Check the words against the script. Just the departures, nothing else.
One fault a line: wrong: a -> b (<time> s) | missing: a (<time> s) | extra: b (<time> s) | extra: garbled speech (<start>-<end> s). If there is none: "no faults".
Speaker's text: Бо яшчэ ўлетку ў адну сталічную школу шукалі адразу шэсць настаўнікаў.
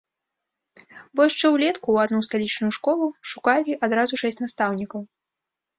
no faults